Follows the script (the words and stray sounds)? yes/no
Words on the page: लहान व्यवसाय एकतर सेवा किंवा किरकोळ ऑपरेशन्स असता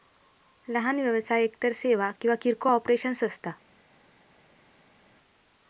yes